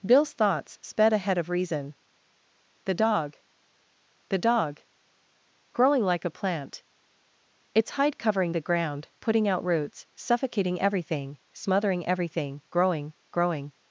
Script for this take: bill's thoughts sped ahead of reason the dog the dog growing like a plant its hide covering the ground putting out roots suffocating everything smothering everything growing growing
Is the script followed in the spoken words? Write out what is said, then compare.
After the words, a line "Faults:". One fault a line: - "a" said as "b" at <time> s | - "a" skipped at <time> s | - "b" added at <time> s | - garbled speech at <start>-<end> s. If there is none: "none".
bill's thoughts sped ahead of reason the dog the dog growing like a plant its hide covering the ground putting out roots suffocating everything smothering everything growing growing
Faults:
none